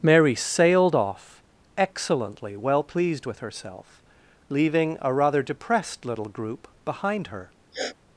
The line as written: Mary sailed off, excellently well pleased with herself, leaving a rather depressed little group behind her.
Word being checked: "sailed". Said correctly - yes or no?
yes